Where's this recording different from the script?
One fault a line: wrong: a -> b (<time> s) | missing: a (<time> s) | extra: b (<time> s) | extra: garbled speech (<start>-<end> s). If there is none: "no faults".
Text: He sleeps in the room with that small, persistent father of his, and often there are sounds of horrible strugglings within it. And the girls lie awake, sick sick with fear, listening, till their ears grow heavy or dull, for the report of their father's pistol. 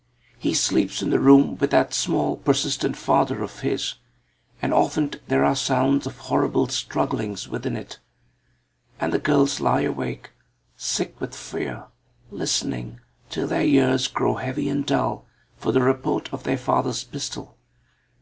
missing: sick (11.2 s)
wrong: or -> and (14.7 s)